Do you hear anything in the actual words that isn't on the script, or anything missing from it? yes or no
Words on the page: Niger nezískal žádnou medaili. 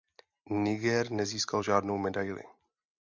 no